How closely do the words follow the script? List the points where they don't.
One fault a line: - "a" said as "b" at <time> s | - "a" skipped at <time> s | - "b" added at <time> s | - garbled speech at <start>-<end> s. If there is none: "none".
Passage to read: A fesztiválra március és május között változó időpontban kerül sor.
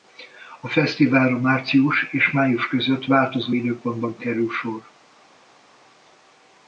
none